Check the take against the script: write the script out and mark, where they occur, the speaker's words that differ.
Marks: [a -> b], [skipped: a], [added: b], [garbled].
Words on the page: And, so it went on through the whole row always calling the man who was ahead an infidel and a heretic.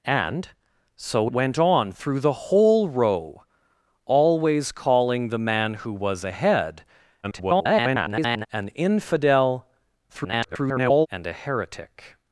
And, so [skipped: it] went on through the whole row always calling the man who was ahead [garbled] an infidel [garbled] and a heretic.